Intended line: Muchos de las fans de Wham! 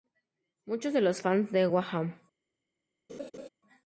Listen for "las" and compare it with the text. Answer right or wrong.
wrong